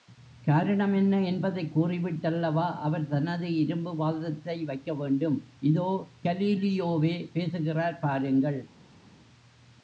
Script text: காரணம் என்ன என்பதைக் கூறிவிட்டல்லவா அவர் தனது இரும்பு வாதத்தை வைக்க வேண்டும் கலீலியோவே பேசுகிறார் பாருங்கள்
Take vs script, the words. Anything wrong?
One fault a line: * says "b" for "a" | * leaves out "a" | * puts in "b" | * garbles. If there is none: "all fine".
* puts in "இதோ"